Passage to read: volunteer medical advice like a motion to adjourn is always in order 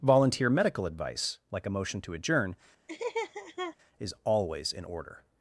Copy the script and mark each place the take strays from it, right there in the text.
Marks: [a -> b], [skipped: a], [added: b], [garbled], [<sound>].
volunteer medical advice like a motion to adjourn [laugh] is always in order